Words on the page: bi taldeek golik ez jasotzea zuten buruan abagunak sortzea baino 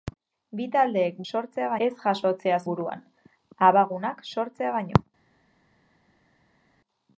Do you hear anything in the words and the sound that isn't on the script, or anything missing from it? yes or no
yes